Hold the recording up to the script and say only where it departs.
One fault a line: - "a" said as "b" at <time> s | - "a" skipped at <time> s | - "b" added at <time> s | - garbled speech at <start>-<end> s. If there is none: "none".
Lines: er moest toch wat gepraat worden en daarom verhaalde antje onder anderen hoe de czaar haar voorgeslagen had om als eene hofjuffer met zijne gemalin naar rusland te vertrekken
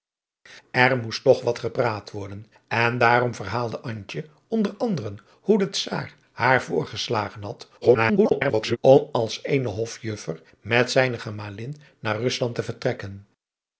- garbled speech at 7.8-8.8 s